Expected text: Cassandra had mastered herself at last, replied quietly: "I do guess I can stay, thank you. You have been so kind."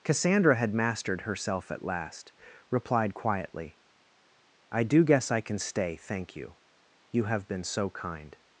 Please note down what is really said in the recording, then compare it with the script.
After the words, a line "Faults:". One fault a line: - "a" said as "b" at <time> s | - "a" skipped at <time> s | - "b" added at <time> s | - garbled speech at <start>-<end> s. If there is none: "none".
Cassandra had mastered herself at last, replied quietly: "I do guess I can stay, thank you. You have been so kind."
Faults:
none